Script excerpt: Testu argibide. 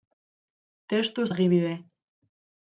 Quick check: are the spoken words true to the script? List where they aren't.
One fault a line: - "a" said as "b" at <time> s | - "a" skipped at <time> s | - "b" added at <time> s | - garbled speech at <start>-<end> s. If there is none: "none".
none